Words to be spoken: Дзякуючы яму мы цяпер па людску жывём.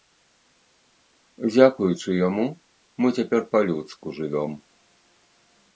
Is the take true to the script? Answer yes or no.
yes